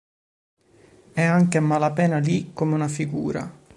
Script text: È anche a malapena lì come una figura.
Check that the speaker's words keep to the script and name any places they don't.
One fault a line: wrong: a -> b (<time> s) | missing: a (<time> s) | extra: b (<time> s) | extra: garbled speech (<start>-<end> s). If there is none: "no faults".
no faults